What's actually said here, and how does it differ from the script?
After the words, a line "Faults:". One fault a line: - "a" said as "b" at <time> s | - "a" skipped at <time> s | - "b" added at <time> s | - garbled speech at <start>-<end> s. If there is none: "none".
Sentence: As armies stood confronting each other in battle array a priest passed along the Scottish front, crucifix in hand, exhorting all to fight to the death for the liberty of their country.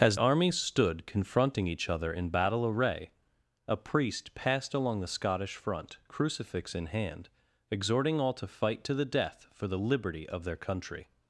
As armies stood confronting each other in battle array a priest passed along the Scottish front, crucifix in hand, exhorting all to fight to the death for the liberty of their country.
Faults:
none